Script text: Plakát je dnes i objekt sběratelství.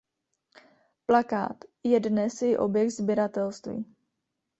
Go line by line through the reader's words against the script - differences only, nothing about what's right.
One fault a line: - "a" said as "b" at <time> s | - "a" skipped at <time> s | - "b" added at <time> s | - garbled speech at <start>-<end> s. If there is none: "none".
none